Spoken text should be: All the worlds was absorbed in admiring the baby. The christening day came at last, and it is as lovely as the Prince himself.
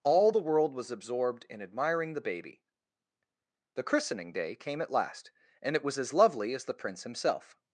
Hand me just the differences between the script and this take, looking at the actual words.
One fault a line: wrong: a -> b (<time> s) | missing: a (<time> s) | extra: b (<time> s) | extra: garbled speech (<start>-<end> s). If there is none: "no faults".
wrong: worlds -> world (0.4 s)
wrong: is -> was (5.8 s)